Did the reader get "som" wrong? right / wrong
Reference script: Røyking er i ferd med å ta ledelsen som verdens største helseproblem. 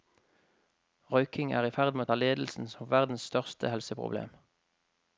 right